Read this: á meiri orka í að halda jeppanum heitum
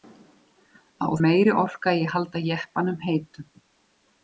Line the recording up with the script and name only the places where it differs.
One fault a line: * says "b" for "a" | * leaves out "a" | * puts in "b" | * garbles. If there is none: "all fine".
all fine